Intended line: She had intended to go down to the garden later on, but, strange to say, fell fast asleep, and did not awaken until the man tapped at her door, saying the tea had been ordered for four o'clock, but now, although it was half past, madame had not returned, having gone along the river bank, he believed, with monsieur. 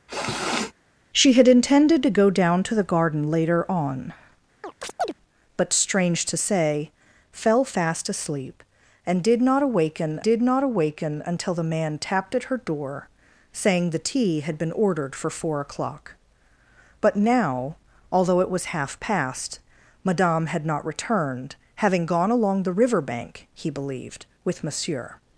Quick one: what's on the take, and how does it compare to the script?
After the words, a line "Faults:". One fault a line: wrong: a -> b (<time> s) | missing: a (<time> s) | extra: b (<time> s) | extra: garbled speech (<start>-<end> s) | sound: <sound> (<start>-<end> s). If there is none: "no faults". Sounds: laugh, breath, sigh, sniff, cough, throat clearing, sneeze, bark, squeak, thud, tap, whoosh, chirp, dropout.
She had intended to go down to the garden later on, but, strange to say, fell fast asleep, and did not awaken did not awaken until the man tapped at her door, saying the tea had been ordered for four o'clock, but now, although it was half past, madame had not returned, having gone along the river bank, he believed, with monsieur.
Faults:
sound: sniff (0.1-0.7 s)
sound: chirp (4.6-5.1 s)
extra: did not awaken (10.2 s)